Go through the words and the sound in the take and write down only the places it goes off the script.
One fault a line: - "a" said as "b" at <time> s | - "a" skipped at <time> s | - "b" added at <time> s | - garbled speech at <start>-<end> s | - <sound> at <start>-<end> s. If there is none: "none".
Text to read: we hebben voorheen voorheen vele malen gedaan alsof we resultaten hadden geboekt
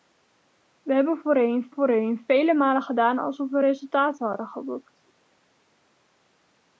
none